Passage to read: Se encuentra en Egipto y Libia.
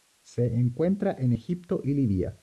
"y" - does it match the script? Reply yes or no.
yes